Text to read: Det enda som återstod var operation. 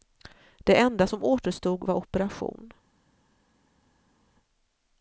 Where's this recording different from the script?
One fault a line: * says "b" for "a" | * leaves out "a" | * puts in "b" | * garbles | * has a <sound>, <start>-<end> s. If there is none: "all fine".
all fine